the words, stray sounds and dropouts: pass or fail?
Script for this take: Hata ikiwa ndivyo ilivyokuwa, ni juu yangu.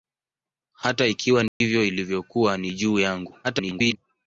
fail